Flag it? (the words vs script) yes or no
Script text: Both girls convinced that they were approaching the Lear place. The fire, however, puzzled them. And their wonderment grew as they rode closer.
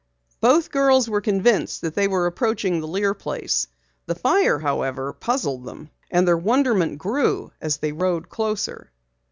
yes